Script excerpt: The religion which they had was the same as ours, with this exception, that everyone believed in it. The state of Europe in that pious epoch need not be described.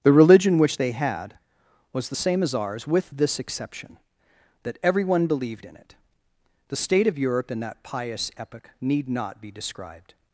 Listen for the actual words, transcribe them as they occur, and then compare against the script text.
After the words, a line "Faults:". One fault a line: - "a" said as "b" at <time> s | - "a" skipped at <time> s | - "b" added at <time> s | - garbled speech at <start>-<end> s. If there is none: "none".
The religion which they had was the same as ours, with this exception, that everyone believed in it. The state of Europe in that pious epoch need not be described.
Faults:
none